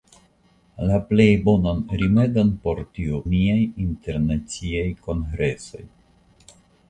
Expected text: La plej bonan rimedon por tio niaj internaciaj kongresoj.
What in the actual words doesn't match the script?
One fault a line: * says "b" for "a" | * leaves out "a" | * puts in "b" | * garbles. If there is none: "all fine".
all fine